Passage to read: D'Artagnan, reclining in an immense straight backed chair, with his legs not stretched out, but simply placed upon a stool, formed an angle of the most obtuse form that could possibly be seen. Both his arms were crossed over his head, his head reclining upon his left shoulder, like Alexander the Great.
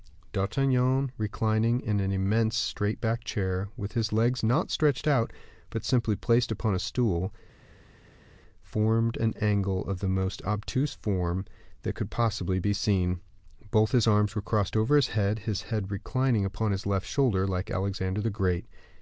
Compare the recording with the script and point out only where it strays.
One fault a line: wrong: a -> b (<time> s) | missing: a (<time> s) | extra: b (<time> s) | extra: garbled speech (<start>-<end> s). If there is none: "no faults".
no faults